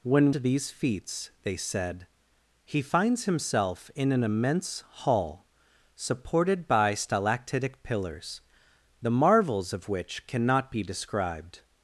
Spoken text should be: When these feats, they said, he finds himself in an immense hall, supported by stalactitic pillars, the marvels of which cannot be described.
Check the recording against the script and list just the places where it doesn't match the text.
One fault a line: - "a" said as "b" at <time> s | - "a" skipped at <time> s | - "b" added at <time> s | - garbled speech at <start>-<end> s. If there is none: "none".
none